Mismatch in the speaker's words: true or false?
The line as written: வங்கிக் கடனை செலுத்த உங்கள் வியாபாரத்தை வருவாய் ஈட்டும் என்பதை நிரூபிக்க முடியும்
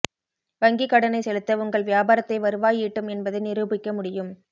false